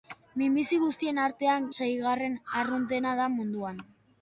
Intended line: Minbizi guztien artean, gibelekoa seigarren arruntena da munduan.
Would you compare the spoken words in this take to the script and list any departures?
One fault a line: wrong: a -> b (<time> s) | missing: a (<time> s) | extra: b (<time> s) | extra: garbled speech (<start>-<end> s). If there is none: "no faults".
missing: gibelekoa (1.7 s)